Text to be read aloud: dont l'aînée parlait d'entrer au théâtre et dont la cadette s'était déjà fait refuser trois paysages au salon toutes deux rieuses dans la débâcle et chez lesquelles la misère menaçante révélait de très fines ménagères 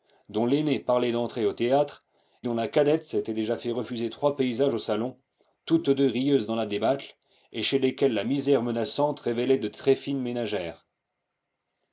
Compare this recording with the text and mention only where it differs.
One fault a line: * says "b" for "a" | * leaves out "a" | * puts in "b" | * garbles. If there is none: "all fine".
* leaves out "et"